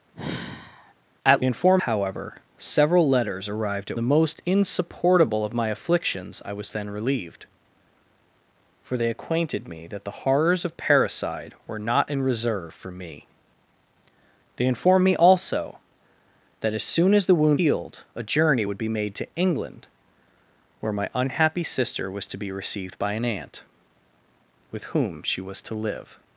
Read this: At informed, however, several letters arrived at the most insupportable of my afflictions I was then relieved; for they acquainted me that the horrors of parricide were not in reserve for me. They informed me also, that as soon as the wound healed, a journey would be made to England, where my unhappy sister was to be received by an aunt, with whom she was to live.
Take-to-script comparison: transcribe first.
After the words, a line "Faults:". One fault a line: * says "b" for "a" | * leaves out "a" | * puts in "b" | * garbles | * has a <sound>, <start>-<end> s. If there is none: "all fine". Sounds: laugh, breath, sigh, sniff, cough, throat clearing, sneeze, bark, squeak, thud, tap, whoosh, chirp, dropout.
At informed, however, several letters arrived at the most insupportable of my afflictions I was then relieved; for they acquainted me that the horrors of parricide were not in reserve for me. They informed me also, that as soon as the wound healed, a journey would be made to England, where my unhappy sister was to be received by an aunt, with whom she was to live.
Faults:
* has a sigh, 0.1-0.9 s